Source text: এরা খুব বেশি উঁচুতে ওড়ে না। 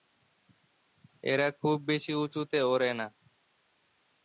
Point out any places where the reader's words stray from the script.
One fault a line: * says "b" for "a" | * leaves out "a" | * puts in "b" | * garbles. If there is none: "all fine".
all fine